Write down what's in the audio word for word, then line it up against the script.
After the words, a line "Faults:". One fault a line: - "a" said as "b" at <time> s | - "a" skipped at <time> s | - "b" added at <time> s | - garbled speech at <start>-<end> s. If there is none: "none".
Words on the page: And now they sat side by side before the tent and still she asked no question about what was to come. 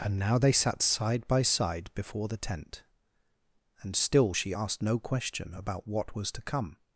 And now they sat side by side before the tent and still she asked no question about what was to come.
Faults:
none